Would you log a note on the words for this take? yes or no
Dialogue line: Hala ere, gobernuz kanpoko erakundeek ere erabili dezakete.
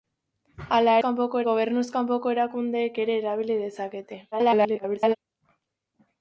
yes